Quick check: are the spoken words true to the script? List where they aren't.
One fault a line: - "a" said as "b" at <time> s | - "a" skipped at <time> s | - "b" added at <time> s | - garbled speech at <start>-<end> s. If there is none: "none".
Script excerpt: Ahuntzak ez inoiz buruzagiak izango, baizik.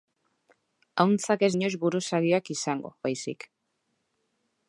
none